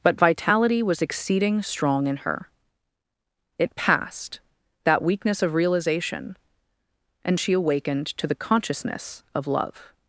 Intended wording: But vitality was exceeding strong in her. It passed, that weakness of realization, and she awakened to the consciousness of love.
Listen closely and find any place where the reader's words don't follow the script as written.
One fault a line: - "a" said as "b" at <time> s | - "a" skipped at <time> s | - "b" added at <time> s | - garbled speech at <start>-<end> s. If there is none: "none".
none